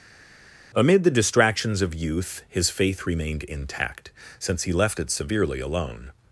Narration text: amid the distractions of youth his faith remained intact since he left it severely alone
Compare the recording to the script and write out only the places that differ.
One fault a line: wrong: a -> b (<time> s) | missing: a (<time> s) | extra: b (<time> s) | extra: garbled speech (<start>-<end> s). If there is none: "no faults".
no faults